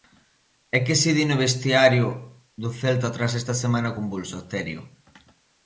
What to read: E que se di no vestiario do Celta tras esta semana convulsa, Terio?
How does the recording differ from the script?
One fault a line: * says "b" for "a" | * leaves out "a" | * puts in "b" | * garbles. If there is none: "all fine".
all fine